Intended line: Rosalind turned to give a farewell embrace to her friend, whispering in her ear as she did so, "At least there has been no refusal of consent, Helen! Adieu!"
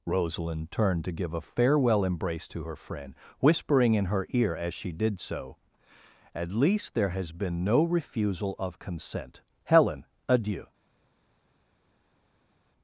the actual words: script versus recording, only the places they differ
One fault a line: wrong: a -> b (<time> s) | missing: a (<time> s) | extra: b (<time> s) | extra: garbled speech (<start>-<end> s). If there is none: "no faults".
no faults